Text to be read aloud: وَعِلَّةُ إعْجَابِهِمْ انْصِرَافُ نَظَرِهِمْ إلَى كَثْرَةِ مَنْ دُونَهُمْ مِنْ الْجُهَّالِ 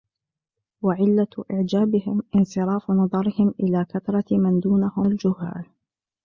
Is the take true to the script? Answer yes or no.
no